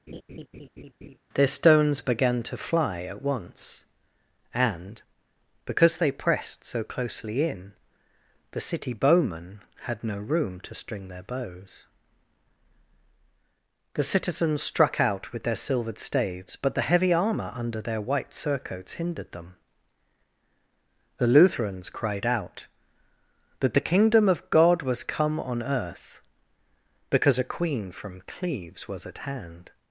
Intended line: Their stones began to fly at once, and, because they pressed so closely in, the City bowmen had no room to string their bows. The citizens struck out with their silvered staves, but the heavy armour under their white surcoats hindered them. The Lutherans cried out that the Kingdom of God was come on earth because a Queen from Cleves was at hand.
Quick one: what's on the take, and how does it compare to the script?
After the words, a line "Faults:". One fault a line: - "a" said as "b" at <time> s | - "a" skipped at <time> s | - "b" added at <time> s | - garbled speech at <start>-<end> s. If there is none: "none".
Their stones began to fly at once, and, because they pressed so closely in, the City bowmen had no room to string their bows. The citizens struck out with their silvered staves, but the heavy armour under their white surcoats hindered them. The Lutherans cried out that the Kingdom of God was come on earth because a Queen from Cleves was at hand.
Faults:
none